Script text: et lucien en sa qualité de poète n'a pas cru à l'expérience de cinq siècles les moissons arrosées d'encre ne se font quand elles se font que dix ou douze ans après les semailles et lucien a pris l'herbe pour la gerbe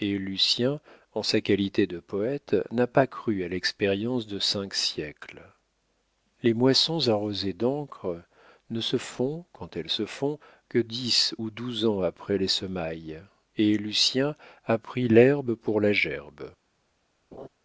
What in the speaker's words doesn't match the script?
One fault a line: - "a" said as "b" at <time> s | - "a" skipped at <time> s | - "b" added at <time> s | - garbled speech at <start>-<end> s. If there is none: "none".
none